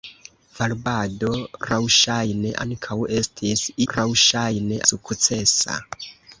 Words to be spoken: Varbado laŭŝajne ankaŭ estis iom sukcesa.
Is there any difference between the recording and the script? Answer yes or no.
yes